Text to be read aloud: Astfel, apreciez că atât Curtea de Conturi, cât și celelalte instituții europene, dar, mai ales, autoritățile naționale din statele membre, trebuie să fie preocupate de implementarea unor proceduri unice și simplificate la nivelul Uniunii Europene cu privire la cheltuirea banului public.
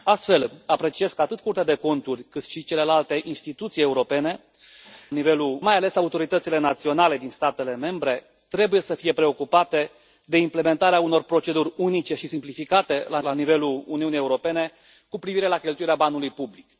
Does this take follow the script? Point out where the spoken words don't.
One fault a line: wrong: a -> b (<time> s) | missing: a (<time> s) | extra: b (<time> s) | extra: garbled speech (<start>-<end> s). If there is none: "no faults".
wrong: dar -> nivelul (5.1 s)
extra: la (13.2 s)